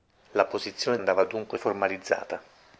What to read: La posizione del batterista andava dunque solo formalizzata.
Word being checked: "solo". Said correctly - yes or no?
no